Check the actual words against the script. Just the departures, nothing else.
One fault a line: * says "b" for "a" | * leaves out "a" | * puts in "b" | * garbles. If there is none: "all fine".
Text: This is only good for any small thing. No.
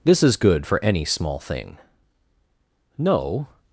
* leaves out "only"